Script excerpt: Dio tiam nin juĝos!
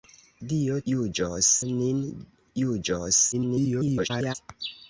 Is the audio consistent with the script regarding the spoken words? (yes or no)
no